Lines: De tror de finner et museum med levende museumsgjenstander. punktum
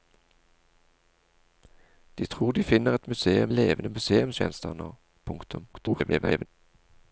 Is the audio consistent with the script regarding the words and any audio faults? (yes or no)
no